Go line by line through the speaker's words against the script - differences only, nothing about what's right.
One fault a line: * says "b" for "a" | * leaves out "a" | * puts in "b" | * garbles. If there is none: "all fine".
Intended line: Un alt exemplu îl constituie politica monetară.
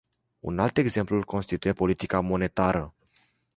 all fine